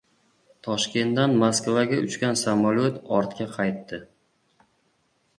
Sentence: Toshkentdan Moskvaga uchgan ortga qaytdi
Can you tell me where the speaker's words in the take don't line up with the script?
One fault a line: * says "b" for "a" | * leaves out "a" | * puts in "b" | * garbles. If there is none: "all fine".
* puts in "samolyot"